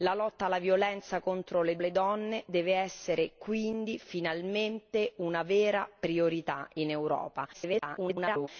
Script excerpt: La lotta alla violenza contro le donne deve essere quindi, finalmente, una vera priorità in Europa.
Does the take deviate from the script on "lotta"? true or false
false